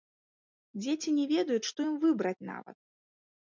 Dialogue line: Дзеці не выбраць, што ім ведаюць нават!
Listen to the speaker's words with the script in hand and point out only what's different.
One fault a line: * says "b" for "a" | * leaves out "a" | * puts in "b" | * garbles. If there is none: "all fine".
* says "ведаюць" for "выбраць"
* says "выбраць" for "ведаюць"